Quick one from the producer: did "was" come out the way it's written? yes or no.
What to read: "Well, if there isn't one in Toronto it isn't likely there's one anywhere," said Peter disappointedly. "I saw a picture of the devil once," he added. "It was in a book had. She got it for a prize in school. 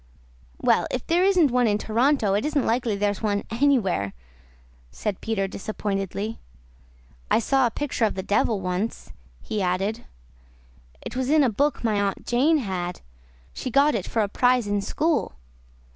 yes